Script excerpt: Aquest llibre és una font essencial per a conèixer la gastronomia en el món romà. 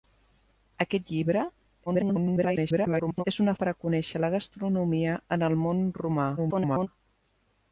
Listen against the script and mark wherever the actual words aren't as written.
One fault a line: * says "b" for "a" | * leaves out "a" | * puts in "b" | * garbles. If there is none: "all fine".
* garbles
* leaves out "font essencial"
* garbles